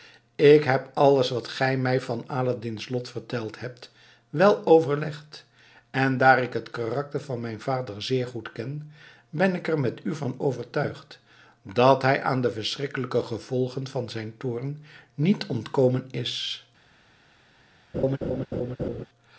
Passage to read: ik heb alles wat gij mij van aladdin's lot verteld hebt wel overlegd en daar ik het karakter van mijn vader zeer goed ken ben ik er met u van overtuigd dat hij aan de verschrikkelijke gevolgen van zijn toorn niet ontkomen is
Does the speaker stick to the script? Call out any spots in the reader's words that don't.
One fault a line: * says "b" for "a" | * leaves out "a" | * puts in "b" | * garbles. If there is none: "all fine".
all fine